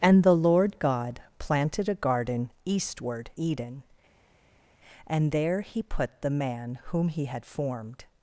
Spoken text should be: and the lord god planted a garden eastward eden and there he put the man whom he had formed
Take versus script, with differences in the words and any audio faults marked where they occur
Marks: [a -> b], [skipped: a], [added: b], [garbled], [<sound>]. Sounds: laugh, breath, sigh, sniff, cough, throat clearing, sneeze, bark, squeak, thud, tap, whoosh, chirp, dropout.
and the lord god planted a garden eastward eden and there he put the man whom he had formed